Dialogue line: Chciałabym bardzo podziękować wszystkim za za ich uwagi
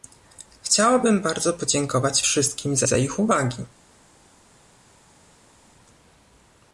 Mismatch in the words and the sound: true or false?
false